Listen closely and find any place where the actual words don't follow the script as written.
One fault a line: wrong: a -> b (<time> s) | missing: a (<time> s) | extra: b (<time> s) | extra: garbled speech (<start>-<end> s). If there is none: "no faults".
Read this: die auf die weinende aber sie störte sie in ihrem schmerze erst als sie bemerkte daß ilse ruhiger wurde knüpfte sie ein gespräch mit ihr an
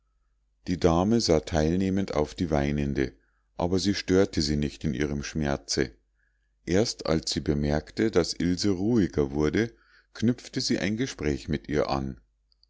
extra: dame sah teilnehmend (0.8 s)
extra: nicht (4.5 s)